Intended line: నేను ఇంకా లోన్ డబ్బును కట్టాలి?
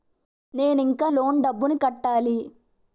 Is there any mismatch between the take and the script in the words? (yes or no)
no